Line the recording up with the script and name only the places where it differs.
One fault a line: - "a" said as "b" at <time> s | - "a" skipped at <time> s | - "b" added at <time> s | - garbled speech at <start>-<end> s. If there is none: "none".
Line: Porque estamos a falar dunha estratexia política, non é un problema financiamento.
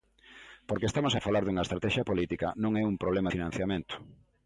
none